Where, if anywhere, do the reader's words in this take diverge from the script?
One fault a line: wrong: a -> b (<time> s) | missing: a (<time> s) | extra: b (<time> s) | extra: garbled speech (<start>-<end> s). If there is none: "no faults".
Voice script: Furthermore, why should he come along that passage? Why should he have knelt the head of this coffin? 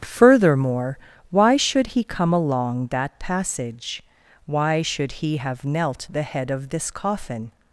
no faults